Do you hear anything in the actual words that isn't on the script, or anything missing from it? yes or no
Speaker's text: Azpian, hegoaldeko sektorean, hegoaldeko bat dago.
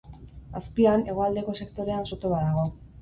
yes